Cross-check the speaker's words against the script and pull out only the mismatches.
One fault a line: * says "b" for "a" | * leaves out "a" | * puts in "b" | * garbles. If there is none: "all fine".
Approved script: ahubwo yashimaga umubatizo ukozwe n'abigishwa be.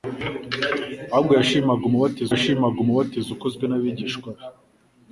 * puts in "yashimaga umubatizo"